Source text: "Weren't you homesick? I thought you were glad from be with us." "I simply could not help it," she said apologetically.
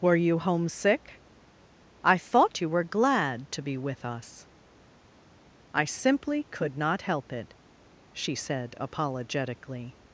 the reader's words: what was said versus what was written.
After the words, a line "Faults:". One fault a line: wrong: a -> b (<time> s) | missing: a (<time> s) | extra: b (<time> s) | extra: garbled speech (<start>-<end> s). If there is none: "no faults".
"Were you homesick? I thought you were glad to be with us." "I simply could not help it," she said apologetically.
Faults:
wrong: Weren't -> Were (0.0 s)
wrong: from -> to (3.5 s)